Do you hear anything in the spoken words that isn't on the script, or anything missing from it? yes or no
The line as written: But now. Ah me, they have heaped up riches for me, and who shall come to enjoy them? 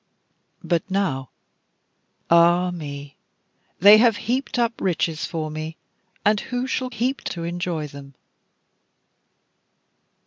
yes